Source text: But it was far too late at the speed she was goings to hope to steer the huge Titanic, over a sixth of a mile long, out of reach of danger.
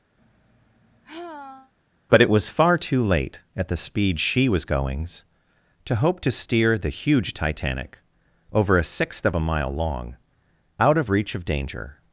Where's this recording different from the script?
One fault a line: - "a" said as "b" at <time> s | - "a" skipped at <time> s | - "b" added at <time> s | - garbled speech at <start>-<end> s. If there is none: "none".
none